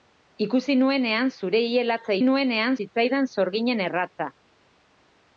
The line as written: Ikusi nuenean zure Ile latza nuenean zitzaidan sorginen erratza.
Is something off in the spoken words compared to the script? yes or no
no